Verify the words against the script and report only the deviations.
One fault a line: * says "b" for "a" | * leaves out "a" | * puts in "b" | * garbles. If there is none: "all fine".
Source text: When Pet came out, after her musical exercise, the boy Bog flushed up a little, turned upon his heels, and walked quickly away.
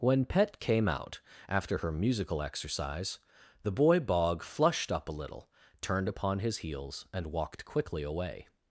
all fine